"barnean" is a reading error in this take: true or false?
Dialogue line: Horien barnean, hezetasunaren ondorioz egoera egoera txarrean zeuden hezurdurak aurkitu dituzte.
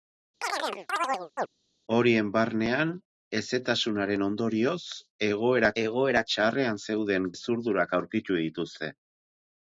false